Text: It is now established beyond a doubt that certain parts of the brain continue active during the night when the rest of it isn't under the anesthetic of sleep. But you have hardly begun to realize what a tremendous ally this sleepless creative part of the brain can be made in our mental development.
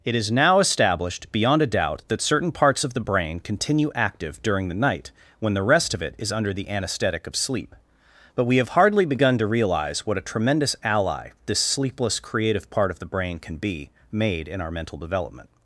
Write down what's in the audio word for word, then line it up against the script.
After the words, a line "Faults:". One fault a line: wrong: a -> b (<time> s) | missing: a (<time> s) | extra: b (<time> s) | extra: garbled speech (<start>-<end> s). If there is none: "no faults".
It is now established beyond a doubt that certain parts of the brain continue active during the night when the rest of it is under the anesthetic of sleep. But we have hardly begun to realize what a tremendous ally this sleepless creative part of the brain can be made in our mental development.
Faults:
wrong: isn't -> is (6.2 s)
wrong: you -> we (8.4 s)